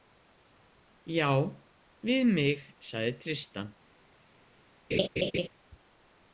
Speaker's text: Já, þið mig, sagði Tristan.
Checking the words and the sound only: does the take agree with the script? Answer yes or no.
no